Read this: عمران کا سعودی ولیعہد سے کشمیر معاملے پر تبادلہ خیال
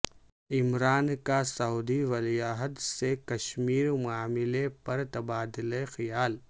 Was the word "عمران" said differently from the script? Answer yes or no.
no